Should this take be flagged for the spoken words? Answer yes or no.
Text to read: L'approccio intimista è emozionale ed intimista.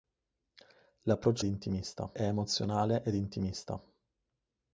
no